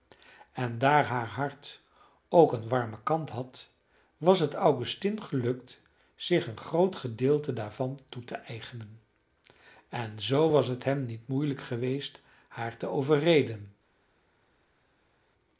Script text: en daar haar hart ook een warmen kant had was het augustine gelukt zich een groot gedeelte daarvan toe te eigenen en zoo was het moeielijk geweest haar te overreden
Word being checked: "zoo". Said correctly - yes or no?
yes